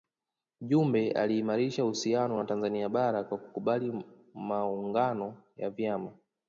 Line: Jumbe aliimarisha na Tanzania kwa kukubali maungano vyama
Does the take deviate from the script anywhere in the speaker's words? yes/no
yes